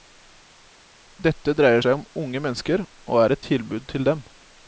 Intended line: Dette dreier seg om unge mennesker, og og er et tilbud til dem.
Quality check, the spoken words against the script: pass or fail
fail